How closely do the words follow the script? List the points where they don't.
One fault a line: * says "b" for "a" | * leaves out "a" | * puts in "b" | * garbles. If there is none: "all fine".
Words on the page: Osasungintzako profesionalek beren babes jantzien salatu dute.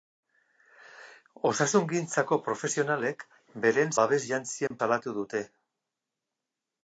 all fine